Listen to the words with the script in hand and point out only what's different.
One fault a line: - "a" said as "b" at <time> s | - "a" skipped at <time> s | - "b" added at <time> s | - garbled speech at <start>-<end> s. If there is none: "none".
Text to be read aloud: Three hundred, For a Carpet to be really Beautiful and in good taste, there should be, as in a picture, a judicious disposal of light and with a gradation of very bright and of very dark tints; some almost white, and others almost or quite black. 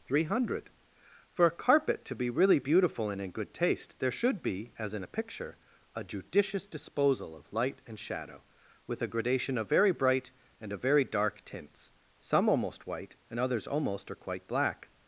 - "shadow" added at 8.0 s